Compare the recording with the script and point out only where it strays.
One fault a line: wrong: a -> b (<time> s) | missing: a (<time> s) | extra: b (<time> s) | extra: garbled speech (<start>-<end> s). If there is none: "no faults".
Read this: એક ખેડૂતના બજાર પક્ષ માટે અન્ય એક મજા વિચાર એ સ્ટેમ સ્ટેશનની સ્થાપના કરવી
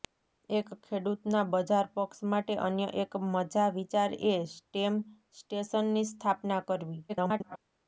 extra: garbled speech (7.1-7.6 s)